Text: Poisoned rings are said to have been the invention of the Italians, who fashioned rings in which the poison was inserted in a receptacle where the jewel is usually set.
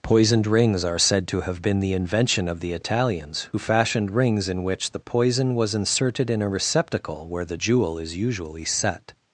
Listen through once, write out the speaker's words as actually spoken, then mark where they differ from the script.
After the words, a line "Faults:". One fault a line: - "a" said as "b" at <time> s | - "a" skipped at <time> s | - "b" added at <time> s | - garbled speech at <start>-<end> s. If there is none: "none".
Poisoned rings are said to have been the invention of the Italians, who fashioned rings in which the poison was inserted in a receptacle where the jewel is usually set.
Faults:
none